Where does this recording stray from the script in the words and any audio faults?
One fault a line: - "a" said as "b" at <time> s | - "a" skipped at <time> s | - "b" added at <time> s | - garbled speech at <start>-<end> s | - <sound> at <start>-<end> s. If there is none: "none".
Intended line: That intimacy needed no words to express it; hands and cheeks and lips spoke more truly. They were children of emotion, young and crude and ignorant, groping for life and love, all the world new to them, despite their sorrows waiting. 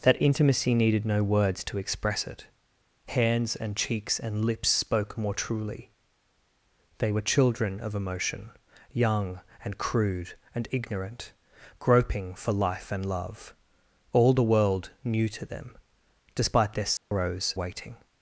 - dropout at 17.0-17.1 s